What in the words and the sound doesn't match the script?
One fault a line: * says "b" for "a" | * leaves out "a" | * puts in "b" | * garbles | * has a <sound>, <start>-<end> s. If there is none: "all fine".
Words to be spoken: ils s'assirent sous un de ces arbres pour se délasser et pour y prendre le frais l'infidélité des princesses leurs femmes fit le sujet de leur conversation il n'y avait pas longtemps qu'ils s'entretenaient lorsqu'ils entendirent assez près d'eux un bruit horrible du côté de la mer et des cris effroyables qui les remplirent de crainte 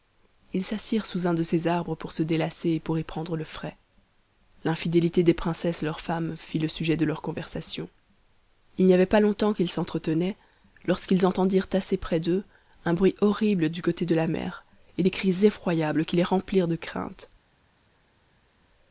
all fine